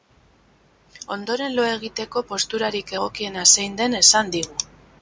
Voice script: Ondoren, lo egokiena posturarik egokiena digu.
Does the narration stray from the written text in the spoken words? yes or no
yes